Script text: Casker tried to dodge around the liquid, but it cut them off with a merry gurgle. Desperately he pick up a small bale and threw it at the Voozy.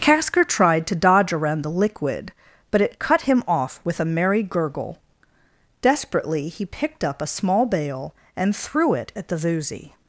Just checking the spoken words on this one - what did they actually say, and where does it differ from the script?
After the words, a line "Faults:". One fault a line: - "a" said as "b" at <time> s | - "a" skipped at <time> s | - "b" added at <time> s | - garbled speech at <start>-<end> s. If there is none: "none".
Casker tried to dodge around the liquid, but it cut him off with a merry gurgle. Desperately he picked up a small bale and threw it at the Voozy.
Faults:
- "them" said as "him" at 3.2 s
- "pick" said as "picked" at 6.7 s